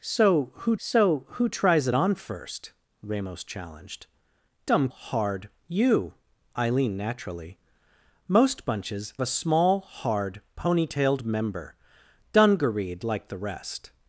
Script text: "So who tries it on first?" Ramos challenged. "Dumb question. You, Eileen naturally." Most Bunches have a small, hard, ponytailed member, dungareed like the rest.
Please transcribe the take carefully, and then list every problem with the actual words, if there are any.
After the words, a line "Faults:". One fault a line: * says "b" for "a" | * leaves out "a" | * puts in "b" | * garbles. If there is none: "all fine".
"So who so who tries it on first?" Ramos challenged. "Dumb hard. You, Eileen naturally." Most Bunches a small, hard, ponytailed member, dungareed like the rest.
Faults:
* puts in "so who"
* says "hard" for "question"
* leaves out "have"